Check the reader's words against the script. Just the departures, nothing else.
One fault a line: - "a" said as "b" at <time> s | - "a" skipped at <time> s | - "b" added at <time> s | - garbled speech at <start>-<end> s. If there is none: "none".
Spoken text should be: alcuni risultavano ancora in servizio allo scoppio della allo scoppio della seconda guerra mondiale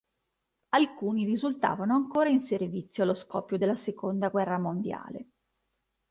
- "allo scoppio della" skipped at 3.8 s